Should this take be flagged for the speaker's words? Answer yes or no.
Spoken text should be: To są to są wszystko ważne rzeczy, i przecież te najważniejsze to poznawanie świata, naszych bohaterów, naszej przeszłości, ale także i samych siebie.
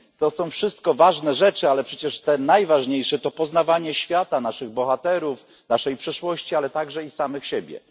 yes